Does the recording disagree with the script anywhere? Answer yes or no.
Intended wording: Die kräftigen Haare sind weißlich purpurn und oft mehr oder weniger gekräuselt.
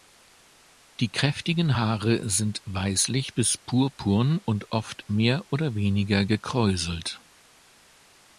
yes